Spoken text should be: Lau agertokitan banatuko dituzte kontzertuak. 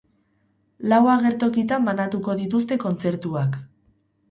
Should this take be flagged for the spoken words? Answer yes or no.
no